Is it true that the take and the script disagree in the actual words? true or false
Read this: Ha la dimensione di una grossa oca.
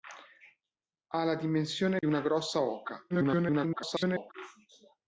true